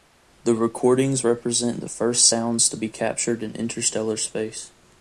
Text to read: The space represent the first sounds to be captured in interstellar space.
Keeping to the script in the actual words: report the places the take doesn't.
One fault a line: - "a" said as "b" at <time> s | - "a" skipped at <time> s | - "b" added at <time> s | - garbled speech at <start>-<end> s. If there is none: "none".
- "space" said as "recordings" at 0.6 s